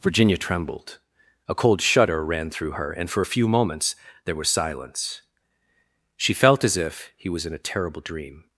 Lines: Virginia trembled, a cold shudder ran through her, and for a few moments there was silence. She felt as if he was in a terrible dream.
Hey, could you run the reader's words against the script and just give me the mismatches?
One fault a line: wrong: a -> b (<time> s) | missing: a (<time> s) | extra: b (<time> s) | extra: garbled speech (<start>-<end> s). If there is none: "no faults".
no faults